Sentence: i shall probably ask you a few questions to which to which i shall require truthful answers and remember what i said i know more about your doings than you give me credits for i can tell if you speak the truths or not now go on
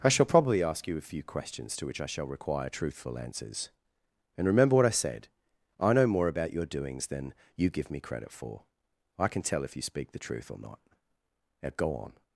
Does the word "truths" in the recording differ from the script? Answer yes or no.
yes